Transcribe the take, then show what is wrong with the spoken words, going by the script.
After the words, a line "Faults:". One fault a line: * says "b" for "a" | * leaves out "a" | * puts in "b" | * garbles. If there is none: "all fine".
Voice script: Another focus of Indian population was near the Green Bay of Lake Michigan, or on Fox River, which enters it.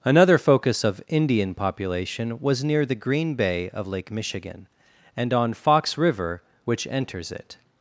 Another focus of Indian population was near the Green Bay of Lake Michigan, and on Fox River, which enters it.
Faults:
* says "and" for "or"